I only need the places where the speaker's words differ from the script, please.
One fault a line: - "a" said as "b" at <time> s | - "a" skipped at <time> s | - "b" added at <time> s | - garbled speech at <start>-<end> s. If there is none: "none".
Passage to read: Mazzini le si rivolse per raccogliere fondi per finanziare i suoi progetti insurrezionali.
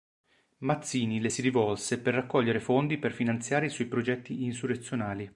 none